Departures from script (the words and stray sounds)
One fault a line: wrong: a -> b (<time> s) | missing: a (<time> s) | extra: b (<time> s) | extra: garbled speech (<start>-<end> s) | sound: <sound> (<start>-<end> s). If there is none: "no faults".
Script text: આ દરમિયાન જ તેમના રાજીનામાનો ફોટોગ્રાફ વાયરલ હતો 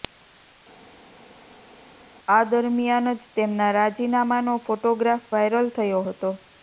extra: થયો (5.8 s)